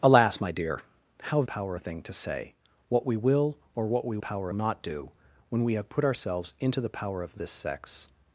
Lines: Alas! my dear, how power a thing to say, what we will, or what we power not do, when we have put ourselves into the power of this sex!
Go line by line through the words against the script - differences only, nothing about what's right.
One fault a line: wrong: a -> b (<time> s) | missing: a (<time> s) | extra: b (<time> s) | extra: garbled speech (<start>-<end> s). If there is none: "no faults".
no faults